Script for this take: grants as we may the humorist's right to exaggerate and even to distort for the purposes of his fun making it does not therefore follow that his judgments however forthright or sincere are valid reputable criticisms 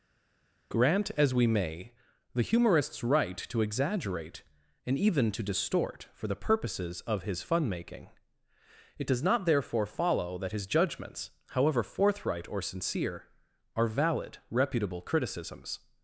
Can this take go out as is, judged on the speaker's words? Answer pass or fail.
fail